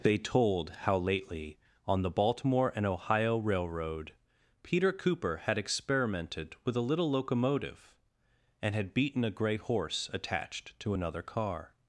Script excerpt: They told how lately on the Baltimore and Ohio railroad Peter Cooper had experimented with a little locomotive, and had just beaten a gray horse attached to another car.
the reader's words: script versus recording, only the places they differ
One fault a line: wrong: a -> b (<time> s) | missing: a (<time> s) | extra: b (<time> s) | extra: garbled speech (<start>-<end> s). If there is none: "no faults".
missing: just (8.9 s)